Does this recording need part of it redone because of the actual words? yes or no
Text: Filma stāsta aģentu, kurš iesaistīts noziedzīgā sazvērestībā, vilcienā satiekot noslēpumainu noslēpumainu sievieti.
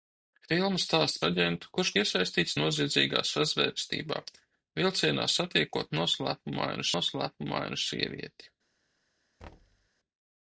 no